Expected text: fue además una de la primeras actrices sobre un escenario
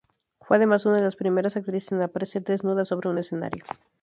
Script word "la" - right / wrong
wrong